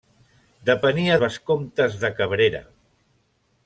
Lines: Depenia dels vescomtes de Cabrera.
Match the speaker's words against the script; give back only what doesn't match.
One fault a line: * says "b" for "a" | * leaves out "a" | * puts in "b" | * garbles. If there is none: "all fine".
* leaves out "dels"